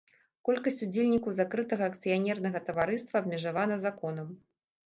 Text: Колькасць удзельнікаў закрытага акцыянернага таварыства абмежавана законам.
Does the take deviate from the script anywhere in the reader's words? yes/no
no